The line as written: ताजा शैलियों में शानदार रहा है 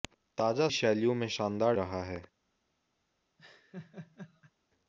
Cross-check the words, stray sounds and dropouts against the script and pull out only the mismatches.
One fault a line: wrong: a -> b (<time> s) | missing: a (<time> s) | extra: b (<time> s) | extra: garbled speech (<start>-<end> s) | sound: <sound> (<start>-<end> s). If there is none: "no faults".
sound: laugh (3.4-4.5 s)